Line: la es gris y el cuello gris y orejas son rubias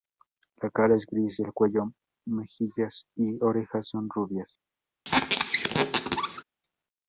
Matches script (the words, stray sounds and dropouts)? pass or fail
fail